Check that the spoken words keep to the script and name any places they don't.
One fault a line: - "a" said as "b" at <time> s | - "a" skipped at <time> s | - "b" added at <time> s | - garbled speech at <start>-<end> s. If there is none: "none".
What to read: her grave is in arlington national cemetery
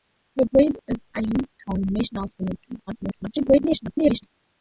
- "in" skipped at 1.1 s
- garbled speech at 2.9-4.3 s